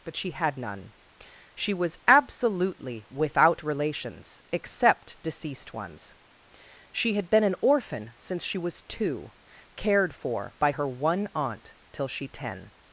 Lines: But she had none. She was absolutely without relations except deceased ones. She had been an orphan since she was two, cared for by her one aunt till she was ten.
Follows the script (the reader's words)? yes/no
no